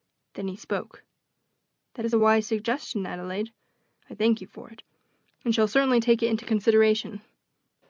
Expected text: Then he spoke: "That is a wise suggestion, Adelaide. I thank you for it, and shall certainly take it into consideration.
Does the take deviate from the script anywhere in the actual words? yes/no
no